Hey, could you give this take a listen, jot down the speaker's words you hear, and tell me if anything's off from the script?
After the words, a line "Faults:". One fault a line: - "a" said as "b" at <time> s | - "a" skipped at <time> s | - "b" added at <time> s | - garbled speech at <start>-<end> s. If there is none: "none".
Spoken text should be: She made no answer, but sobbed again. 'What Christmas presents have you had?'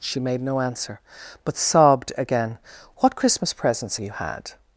She made no answer, but sobbed again. 'What Christmas presents you had?'
Faults:
- "have" skipped at 4.0 s